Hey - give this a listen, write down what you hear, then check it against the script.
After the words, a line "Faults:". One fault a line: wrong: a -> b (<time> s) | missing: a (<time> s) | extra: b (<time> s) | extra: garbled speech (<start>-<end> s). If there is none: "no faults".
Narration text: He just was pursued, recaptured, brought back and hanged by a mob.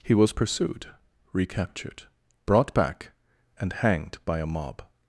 He was pursued, recaptured, brought back and hanged by a mob.
Faults:
missing: just (0.1 s)